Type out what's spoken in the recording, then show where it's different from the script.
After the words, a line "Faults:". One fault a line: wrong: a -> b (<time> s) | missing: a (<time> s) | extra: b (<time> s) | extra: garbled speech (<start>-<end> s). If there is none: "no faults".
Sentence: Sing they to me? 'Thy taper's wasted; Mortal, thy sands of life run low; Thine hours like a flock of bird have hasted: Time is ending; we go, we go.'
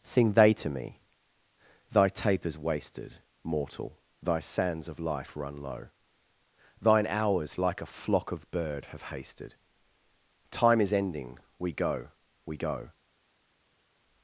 Sing they to me? 'Thy taper's wasted; Mortal, thy sands of life run low; Thine hours like a flock of bird have hasted: Time is ending; we go, we go.'
Faults:
no faults